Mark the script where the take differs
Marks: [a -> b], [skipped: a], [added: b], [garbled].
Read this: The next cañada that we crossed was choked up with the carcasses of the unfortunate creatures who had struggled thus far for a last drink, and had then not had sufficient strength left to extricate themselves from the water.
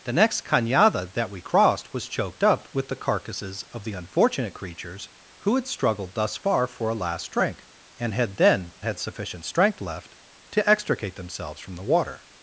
The next cañada that we crossed was choked up with the carcasses of the unfortunate creatures who had struggled thus far for a last drink, and had then [skipped: not] had sufficient strength left to extricate themselves from the water.